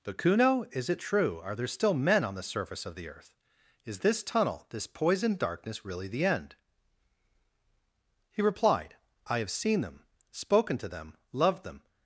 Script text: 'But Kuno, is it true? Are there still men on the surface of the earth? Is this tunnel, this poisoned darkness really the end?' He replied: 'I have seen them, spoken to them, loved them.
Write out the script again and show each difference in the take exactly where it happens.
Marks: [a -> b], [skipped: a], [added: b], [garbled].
'But Kuno, is it true? Are there still men on the surface of the earth? Is this tunnel, this poisoned darkness really the end?' He replied: 'I have seen them, spoken to them, loved them.